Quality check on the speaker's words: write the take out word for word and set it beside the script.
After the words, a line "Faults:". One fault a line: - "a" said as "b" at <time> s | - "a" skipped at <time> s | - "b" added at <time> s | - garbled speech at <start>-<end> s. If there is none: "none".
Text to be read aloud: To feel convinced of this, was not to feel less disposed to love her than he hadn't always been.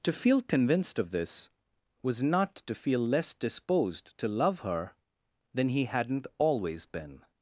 To feel convinced of this, was not to feel less disposed to love her than he hadn't always been.
Faults:
none